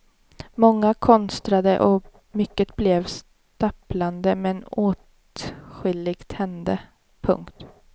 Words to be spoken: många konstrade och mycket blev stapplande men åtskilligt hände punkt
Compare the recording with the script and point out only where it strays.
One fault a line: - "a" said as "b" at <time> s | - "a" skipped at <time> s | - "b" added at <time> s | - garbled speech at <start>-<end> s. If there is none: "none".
none